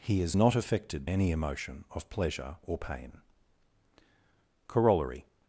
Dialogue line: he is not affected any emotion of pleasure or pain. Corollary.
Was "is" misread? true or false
false